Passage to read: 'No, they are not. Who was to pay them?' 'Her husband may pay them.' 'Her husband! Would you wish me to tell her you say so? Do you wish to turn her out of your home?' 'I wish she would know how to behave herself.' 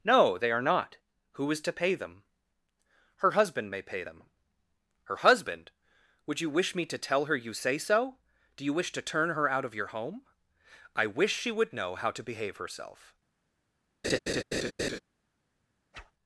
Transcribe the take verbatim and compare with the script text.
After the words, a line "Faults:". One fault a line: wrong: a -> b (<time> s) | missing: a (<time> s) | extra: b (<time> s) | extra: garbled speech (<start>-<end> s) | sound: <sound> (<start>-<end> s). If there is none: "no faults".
'No, they are not. Who is to pay them?' 'Her husband may pay them.' 'Her husband! Would you wish me to tell her you say so? Do you wish to turn her out of your home?' 'I wish she would know how to behave herself.'
Faults:
wrong: was -> is (1.5 s)
sound: laugh (14.0-15.0 s)
sound: whoosh (15.9-16.1 s)